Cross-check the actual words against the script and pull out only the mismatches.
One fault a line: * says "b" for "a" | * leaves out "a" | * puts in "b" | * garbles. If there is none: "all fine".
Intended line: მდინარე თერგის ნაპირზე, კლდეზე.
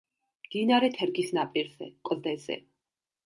all fine